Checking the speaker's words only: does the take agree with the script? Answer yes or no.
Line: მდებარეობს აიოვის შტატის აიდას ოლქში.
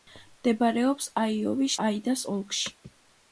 no